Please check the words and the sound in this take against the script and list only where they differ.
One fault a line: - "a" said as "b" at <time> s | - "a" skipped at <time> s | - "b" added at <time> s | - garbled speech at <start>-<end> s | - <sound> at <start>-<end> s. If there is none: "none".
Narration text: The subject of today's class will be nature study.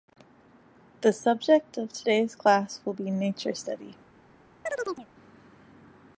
- chirp at 4.7-5.1 s